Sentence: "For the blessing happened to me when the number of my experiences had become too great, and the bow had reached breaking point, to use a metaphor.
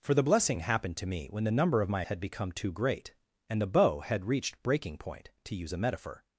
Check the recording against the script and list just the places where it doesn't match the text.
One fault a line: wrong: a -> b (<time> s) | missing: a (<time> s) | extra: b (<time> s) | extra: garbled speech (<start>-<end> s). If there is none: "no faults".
missing: experiences (2.0 s)